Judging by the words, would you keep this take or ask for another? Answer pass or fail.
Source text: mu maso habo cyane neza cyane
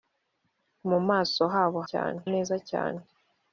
pass